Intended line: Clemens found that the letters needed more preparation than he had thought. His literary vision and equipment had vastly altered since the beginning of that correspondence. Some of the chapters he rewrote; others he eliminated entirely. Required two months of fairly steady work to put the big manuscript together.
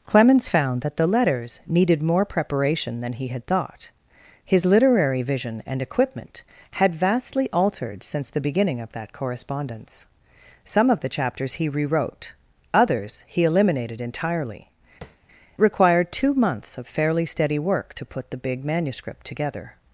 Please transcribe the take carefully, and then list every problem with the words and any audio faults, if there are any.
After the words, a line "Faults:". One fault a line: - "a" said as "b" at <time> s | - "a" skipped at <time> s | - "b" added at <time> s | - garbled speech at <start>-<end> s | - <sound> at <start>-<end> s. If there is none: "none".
Clemens found that the letters needed more preparation than he had thought. His literary vision and equipment had vastly altered since the beginning of that correspondence. Some of the chapters he rewrote; others he eliminated entirely. Required two months of fairly steady work to put the big manuscript together.
Faults:
- tap at 15.0-15.2 s